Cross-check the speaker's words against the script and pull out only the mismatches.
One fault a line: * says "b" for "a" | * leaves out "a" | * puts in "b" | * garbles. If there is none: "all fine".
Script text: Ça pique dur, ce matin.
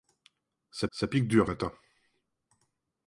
* puts in "ça"
* leaves out "ce"